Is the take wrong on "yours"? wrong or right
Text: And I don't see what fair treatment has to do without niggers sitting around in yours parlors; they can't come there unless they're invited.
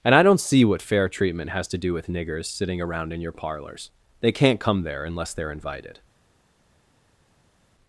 wrong